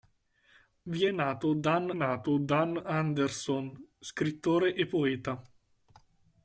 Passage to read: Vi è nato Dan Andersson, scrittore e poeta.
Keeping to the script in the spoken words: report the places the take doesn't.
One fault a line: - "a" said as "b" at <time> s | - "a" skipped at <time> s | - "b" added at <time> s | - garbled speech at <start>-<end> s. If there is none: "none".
- "nato Dan" added at 1.9 s